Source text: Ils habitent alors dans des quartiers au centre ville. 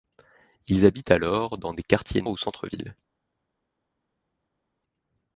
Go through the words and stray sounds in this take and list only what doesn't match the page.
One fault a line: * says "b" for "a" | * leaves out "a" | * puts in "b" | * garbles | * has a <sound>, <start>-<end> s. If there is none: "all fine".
all fine